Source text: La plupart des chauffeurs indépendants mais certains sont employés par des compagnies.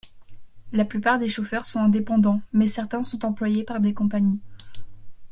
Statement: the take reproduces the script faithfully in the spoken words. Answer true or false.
false